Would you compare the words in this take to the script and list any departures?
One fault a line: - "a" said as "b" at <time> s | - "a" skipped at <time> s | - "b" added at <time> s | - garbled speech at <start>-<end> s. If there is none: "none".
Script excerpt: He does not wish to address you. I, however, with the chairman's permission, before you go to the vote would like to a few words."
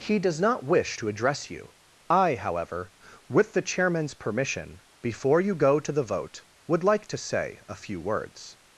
- "say" added at 7.2 s